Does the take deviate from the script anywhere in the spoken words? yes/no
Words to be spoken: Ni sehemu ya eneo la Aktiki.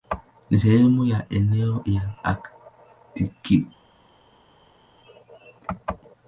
no